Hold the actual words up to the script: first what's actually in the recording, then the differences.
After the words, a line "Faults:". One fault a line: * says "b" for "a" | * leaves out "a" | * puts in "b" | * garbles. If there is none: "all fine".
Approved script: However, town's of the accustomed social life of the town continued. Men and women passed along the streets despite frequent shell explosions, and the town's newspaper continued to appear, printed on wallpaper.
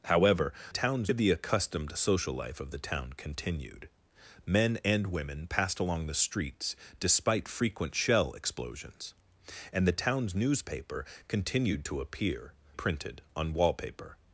However, town's of the accustomed social life of the town continued. Men and women passed along the streets despite frequent shell explosions, and the town's newspaper continued to appear, printed on wallpaper.
Faults:
all fine